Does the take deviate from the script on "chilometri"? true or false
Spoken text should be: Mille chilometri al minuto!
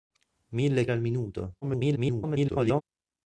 true